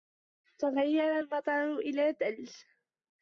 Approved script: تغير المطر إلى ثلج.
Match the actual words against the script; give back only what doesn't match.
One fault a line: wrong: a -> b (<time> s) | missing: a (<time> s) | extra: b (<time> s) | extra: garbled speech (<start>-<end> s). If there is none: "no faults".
no faults